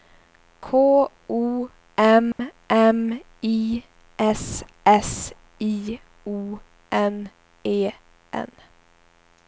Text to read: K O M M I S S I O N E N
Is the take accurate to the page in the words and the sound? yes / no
no